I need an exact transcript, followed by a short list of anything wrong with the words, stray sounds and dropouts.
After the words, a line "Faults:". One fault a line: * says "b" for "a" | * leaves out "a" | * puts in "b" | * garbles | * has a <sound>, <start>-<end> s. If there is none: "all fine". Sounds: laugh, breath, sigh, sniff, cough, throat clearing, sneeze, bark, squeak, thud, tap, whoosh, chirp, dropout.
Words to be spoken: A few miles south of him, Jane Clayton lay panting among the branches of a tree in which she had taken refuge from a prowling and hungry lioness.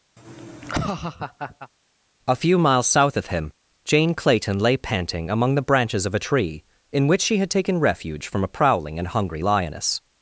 A few miles south of him, Jane Clayton lay panting among the branches of a tree in which she had taken refuge from a prowling and hungry lioness.
Faults:
* has a laugh, 0.2-1.7 s